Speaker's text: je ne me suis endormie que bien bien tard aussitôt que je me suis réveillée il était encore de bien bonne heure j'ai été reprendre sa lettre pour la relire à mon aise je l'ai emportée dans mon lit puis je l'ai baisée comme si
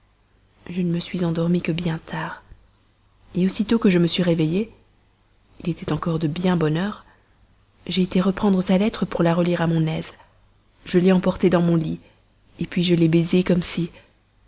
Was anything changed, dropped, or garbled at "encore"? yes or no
no